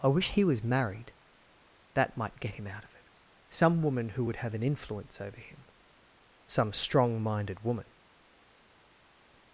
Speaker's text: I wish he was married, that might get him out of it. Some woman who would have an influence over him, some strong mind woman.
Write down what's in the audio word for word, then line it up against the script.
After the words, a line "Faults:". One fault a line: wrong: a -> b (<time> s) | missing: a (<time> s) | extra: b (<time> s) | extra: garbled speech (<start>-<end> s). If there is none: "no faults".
I wish he was married, that might get him out of it. Some woman who would have an influence over him, some strong minded woman.
Faults:
wrong: mind -> minded (7.2 s)